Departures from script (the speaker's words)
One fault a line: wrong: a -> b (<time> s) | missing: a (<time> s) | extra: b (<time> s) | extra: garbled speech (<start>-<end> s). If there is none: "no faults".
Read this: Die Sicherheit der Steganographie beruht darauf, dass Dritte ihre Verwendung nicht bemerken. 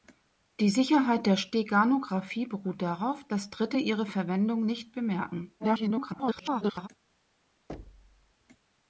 extra: garbled speech (5.6-6.9 s)